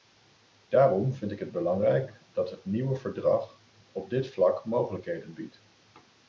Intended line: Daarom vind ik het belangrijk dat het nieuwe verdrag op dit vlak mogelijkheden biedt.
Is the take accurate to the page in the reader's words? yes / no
yes